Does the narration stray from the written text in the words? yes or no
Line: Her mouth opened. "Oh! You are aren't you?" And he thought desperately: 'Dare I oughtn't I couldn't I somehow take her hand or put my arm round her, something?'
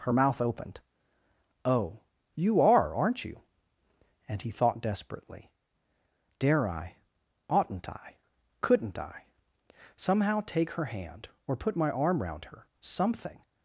no